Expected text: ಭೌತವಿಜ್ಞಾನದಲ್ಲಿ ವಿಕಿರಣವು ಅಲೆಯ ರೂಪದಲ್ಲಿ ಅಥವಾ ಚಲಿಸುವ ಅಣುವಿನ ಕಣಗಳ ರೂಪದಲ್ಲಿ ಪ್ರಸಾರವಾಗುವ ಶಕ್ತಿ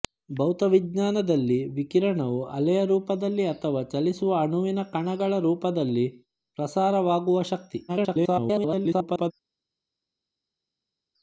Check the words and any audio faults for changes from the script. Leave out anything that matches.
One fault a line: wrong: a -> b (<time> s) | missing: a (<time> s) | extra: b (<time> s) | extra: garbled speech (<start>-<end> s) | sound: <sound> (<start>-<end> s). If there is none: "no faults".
extra: garbled speech (7.9-9.3 s)